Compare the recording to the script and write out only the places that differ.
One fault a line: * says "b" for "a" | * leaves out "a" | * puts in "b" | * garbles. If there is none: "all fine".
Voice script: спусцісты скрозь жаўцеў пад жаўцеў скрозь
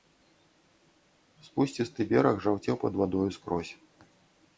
* says "бераг" for "скрозь"
* says "вадою" for "жаўцеў"